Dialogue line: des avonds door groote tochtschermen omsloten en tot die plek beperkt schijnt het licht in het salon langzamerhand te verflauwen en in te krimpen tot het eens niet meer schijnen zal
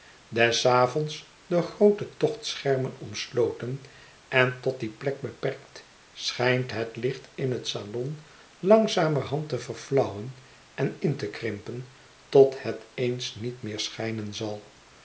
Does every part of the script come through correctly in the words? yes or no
yes